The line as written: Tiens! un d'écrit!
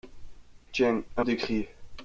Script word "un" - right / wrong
right